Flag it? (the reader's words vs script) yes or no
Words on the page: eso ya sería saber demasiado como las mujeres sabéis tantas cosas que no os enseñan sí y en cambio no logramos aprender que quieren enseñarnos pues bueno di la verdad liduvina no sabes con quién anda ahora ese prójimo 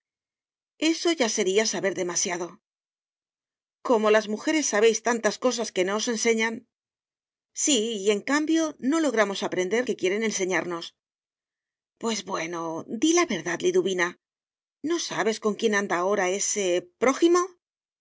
no